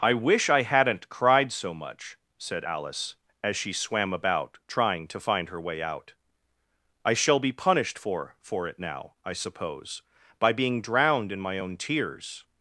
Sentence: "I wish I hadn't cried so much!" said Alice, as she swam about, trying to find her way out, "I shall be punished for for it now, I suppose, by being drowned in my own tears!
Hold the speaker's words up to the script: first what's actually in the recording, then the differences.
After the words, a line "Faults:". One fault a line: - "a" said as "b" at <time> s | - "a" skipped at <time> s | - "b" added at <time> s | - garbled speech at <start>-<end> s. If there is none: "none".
"I wish I hadn't cried so much!" said Alice, as she swam about, trying to find her way out, "I shall be punished for for it now, I suppose, by being drowned in my own tears!
Faults:
none